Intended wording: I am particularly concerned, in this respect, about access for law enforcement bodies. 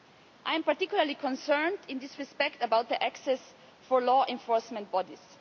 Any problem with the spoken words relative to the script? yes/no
no